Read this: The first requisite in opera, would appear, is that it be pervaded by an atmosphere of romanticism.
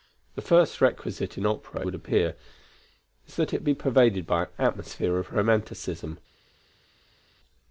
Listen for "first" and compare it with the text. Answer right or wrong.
right